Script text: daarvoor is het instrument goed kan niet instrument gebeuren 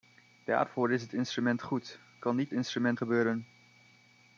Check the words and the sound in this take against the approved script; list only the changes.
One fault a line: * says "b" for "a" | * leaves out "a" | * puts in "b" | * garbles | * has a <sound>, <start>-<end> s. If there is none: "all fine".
all fine